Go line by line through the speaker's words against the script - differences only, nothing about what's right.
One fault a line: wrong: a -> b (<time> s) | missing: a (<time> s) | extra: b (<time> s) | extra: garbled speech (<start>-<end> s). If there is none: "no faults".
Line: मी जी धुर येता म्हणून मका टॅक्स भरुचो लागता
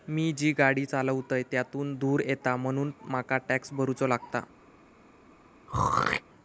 extra: गाडी चालवतय त्यातुन (0.5 s)